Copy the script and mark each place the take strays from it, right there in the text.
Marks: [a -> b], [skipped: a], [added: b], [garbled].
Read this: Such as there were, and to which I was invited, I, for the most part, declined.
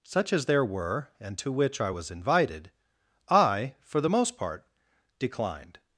Such as there were, and to which I was invited, I, for the most part, declined.